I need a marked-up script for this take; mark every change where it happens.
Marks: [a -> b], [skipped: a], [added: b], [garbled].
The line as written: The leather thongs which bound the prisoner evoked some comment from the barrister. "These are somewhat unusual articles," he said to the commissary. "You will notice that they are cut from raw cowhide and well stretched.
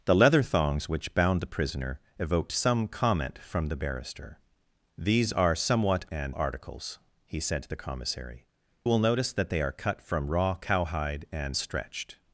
The leather thongs which bound the prisoner evoked some comment from the barrister. "These are somewhat [unusual -> and] articles," he said to the commissary. [skipped: "You] will notice that they are cut from raw cowhide and [skipped: well] stretched.